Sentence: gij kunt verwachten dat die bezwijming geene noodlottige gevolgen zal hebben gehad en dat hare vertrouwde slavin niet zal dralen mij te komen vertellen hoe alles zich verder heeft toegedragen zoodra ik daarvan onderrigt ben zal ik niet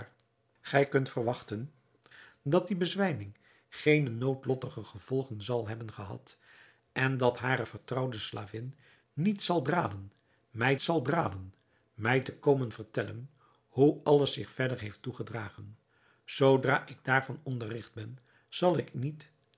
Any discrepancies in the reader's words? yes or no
yes